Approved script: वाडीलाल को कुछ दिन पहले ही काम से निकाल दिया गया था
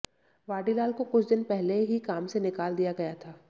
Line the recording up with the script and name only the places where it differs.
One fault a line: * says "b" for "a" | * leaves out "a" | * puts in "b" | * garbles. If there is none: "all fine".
all fine